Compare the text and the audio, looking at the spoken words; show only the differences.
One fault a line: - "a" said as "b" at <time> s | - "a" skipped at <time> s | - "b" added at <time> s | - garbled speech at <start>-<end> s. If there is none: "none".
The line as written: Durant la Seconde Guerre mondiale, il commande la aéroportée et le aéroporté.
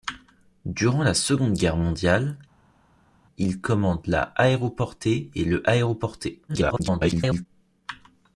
- garbled speech at 6.5-7.5 s